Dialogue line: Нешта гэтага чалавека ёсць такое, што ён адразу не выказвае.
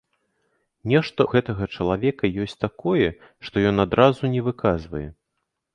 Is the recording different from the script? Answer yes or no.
no